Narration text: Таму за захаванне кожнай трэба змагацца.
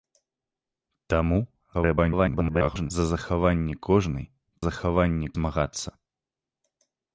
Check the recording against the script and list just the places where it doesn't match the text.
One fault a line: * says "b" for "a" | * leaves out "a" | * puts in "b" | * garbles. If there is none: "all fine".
* garbles
* says "захаванне" for "трэба"